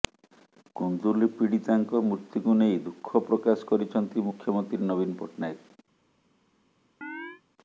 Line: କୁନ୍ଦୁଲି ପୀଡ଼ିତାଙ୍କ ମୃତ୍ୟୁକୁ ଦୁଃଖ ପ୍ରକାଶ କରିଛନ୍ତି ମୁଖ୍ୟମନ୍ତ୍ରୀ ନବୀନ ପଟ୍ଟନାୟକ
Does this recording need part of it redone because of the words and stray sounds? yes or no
yes